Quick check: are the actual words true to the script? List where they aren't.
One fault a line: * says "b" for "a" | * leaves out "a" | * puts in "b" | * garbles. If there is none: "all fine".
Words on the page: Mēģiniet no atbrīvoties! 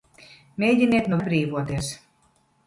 all fine